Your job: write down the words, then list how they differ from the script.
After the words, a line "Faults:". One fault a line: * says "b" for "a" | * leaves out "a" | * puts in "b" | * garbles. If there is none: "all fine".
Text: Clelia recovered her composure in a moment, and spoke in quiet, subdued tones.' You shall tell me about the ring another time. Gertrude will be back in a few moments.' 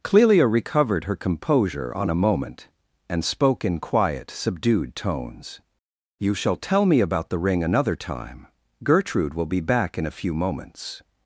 Clelia recovered her composure on a moment, and spoke in quiet, subdued tones.' You shall tell me about the ring another time. Gertrude will be back in a few moments.'
Faults:
* says "on" for "in"